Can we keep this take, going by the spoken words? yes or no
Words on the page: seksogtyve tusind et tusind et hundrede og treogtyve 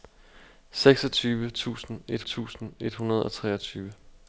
yes